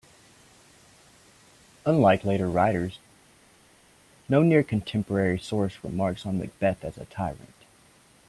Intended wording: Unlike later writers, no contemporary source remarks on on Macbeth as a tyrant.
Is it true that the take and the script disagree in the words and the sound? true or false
true